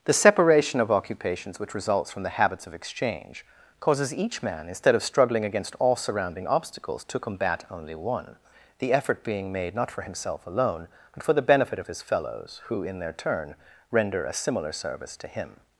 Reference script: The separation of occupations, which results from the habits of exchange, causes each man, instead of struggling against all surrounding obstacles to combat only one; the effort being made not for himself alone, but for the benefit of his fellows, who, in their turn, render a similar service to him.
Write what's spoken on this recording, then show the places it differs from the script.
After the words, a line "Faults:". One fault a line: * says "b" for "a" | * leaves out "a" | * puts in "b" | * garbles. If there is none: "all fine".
The separation of occupations, which results from the habits of exchange, causes each man, instead of struggling against all surrounding obstacles to combat only one; the effort being made not for himself alone, but for the benefit of his fellows, who, in their turn, render a similar service to him.
Faults:
all fine